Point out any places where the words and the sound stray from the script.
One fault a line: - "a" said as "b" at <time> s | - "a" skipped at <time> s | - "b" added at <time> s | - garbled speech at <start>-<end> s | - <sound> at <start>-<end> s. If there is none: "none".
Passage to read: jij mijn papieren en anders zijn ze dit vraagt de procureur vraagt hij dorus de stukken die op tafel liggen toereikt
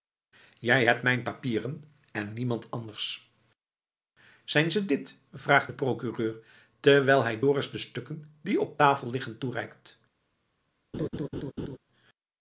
- "hebt" added at 0.8 s
- "niemand" added at 2.3 s
- "vraagt" said as "terwijl" at 6.8 s
- laugh at 10.9-11.8 s